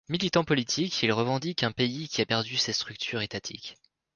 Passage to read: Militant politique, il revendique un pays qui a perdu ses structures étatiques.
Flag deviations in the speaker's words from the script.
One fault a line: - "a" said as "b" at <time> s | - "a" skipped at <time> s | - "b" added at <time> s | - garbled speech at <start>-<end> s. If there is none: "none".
none